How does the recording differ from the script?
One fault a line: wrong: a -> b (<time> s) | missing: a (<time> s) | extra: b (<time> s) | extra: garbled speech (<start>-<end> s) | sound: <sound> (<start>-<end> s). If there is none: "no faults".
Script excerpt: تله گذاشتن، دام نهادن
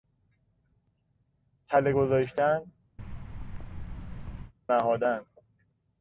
missing: دام (2.7 s)
sound: thud (3.0-4.5 s)